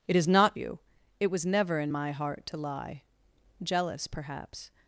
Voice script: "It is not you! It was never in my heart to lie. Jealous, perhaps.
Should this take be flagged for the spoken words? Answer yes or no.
no